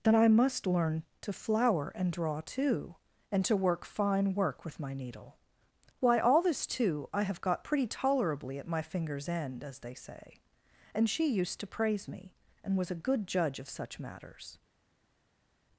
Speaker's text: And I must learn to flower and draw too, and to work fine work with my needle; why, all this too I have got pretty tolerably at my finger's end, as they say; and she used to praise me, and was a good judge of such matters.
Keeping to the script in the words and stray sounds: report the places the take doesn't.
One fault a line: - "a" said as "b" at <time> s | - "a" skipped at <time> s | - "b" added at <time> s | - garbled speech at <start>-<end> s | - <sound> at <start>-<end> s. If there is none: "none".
- "And" said as "Then" at 0.0 s